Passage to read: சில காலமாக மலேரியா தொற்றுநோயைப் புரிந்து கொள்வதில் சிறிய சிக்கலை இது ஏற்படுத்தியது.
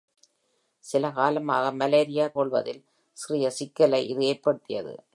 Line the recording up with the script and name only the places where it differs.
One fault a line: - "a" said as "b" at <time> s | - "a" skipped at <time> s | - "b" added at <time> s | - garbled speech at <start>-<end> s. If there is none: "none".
- "தொற்றுநோயைப் புரிந்து" skipped at 2.3 s